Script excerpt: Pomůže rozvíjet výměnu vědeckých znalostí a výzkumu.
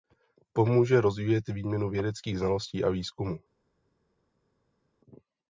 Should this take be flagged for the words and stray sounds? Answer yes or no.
no